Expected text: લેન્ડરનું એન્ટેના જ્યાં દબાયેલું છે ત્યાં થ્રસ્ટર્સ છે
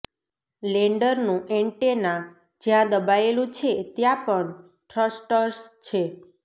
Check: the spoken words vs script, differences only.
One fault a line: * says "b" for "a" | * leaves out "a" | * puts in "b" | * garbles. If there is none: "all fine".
* puts in "પણ"